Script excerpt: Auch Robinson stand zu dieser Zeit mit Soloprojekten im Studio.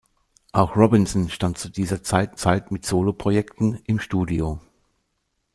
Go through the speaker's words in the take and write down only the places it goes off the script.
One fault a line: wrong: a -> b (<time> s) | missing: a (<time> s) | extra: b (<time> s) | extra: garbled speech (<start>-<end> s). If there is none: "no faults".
extra: Zeit (2.3 s)